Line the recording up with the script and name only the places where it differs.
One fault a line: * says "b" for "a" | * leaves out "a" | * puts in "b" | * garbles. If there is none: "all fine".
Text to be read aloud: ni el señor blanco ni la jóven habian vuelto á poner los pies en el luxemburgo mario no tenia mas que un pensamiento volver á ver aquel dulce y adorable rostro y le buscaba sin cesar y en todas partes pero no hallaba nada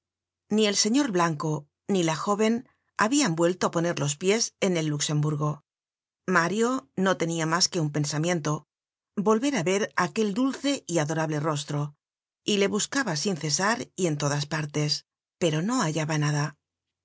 all fine